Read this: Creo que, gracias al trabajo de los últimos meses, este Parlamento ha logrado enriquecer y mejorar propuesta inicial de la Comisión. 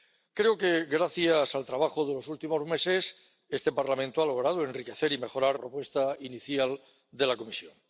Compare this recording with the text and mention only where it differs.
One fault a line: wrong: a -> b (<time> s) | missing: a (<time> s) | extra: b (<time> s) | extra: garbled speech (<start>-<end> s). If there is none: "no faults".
no faults